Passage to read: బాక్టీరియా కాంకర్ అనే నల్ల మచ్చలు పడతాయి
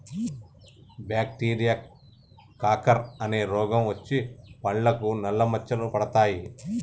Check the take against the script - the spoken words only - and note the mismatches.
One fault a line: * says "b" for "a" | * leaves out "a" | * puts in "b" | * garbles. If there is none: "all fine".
* puts in "రోగం వచ్చి పండ్లకు"